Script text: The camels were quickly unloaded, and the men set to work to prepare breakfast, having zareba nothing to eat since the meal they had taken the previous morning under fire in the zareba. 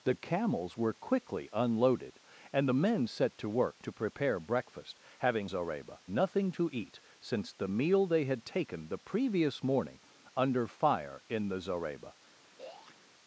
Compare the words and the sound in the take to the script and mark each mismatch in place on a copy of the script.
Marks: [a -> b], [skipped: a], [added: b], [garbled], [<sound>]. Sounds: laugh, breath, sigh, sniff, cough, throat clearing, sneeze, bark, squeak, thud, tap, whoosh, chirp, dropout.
The camels were quickly unloaded, and the men set to work to prepare breakfast, having zareba nothing to eat since the meal they had taken the previous morning under fire in the zareba. [throat clearing]